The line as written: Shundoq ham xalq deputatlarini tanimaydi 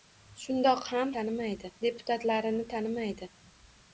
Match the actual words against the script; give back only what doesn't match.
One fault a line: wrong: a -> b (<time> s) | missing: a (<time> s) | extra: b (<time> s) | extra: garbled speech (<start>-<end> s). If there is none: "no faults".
wrong: xalq -> tanimaydi (1.2 s)